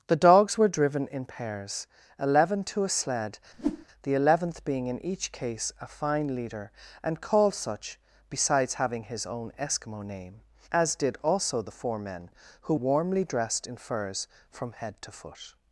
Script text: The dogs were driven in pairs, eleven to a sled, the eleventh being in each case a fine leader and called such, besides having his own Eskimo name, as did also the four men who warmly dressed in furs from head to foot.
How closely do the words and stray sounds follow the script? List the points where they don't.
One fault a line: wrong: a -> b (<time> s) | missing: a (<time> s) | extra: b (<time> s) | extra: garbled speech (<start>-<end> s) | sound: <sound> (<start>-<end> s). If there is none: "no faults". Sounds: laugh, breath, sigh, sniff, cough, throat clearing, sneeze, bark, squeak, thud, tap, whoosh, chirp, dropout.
sound: whoosh (3.5-3.9 s)